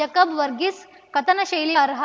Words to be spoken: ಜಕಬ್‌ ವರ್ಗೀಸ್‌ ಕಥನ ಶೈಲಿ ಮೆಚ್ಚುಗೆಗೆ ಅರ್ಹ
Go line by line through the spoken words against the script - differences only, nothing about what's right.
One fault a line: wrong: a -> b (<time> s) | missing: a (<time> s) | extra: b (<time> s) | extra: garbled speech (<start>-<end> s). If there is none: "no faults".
missing: ಮೆಚ್ಚುಗೆಗೆ (1.8 s)